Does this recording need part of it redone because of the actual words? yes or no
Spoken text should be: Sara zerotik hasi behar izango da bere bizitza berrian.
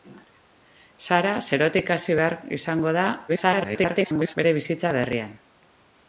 yes